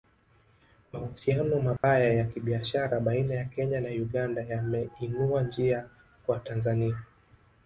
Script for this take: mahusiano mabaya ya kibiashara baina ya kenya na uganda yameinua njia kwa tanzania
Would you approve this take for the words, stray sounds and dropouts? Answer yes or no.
no